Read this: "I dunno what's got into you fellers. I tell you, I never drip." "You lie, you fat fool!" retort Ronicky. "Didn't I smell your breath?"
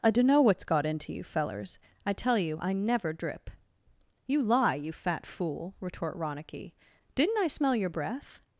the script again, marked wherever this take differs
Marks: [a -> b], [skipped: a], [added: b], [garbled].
"I dunno what's got into you fellers. I tell you, I never drip." "You lie, you fat fool!" retort Ronicky. "Didn't I smell your breath?"